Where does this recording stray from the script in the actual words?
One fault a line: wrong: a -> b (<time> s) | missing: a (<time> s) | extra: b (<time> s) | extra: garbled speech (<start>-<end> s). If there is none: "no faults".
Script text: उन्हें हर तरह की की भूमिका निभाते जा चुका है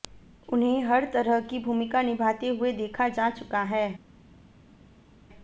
missing: की (1.6 s)
extra: हुए देखा (2.5 s)